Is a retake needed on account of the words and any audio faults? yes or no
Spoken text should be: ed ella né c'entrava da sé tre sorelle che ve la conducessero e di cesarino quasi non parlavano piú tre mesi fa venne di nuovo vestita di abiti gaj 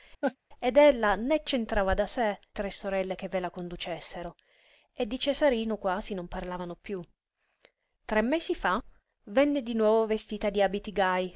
yes